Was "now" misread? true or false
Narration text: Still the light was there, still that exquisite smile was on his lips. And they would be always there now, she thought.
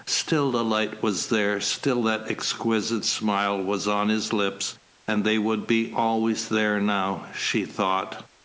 false